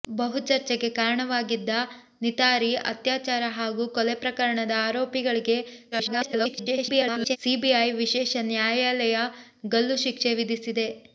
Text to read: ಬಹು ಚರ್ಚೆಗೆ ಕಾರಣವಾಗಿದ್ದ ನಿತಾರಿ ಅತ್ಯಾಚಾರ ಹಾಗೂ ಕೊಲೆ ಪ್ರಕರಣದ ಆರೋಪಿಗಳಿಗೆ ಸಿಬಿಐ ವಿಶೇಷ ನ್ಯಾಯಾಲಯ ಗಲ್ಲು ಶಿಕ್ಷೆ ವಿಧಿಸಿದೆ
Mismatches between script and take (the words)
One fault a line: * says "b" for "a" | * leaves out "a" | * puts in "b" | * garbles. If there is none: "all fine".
* garbles